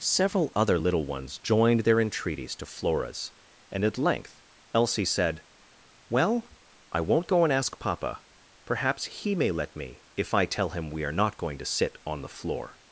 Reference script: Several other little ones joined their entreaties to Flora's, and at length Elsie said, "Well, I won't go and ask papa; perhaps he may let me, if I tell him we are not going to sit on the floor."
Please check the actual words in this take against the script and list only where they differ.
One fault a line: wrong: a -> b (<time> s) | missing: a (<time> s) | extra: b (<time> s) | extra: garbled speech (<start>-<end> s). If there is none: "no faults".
no faults